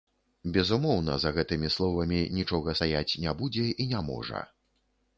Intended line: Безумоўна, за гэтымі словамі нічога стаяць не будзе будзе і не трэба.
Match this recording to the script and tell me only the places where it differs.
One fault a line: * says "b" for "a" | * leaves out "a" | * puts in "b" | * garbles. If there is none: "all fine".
* leaves out "будзе"
* says "можа" for "трэба"